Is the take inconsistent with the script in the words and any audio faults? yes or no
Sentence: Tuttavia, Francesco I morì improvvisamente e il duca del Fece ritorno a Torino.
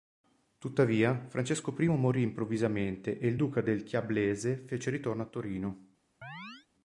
yes